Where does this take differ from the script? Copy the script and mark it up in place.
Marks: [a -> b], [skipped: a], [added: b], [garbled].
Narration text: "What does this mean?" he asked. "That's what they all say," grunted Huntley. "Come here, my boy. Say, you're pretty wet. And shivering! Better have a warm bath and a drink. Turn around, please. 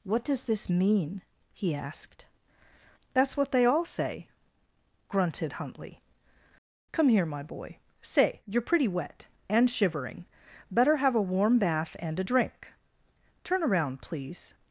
"What does this mean?" he asked. "That's what they all say," grunted Huntley. "Come here, my boy. Say, you're pretty wet. And shivering! Better have a warm bath and a drink. Turn around, please.